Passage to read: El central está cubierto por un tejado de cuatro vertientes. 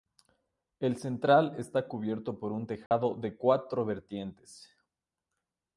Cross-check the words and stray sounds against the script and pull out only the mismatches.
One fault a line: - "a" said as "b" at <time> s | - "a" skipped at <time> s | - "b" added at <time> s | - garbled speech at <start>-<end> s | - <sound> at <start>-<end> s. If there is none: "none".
- dropout at 2.9-2.9 s